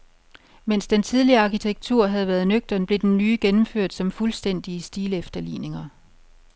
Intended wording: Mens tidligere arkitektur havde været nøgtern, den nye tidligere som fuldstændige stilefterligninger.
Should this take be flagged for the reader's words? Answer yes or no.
yes